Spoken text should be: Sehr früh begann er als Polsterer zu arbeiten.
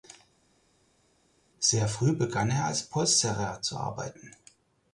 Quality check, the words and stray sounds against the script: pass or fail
pass